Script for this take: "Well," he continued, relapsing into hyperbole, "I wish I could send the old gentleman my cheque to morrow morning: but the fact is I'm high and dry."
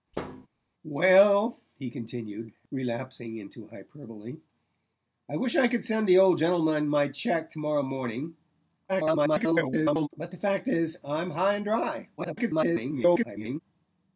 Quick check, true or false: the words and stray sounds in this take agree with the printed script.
false